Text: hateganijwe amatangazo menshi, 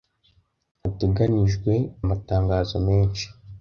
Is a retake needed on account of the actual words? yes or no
no